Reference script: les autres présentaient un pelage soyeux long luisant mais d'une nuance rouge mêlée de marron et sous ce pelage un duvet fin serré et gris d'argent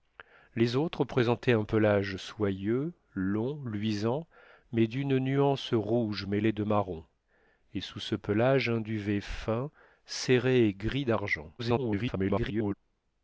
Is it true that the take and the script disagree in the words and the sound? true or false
true